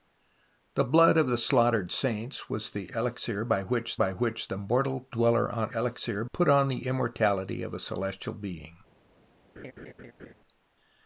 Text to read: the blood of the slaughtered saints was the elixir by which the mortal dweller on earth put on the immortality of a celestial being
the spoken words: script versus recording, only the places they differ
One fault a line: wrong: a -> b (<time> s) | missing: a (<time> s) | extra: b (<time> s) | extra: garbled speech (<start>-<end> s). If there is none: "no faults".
extra: by which (3.9 s)
wrong: earth -> elixir (5.7 s)